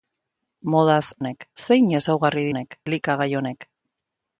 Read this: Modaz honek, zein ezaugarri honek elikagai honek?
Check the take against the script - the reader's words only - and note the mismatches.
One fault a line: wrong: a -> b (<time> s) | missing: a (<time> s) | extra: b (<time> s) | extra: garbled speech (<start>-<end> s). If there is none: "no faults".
no faults